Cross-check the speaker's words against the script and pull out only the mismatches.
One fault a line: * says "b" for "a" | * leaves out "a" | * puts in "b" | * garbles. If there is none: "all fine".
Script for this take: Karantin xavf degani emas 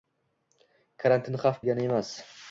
all fine